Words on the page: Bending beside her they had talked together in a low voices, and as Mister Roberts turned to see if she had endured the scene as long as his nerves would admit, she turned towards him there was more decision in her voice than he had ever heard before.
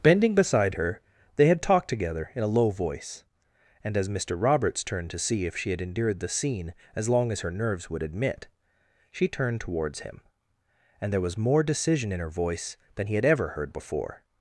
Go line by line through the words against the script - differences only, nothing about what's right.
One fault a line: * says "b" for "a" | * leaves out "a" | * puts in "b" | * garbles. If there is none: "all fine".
* says "voice" for "voices"
* says "her" for "his"
* puts in "and"